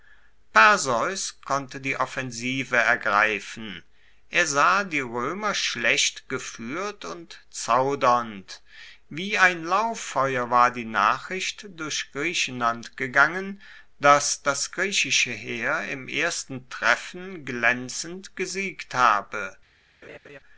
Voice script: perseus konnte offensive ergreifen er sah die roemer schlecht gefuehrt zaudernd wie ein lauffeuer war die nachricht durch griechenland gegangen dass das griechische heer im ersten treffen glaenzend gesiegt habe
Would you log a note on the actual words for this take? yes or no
yes